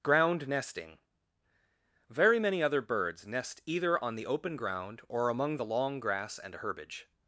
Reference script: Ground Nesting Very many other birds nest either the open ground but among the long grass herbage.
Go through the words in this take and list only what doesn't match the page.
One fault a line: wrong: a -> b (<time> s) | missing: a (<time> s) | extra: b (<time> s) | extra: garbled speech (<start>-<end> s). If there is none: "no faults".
extra: on (4.0 s)
wrong: but -> or (5.1 s)
extra: and (6.4 s)